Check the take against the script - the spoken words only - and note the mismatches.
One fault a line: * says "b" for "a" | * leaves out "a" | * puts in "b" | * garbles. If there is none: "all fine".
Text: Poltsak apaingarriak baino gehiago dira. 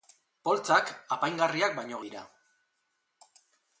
* leaves out "gehiago"